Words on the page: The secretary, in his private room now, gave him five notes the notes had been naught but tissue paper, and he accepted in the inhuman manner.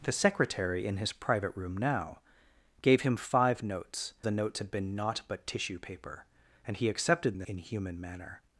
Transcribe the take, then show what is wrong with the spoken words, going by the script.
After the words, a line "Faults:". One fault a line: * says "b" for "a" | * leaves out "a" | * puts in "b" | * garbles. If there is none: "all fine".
The secretary, in his private room now, gave him five notes the notes had been naught but tissue paper, and he accepted in the inhuman manner.
Faults:
all fine